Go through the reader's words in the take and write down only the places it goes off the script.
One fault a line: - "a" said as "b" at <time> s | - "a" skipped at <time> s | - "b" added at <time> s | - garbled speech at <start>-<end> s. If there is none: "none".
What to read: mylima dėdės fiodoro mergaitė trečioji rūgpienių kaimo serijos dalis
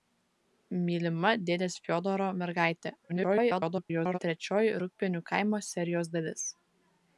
- garbled speech at 3.1-4.2 s